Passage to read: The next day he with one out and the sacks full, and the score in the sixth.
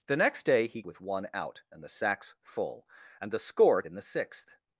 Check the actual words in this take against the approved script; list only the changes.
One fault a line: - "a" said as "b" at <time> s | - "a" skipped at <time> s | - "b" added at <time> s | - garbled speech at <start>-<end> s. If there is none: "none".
none